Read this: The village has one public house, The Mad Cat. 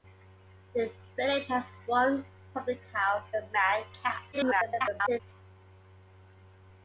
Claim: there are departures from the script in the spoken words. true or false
true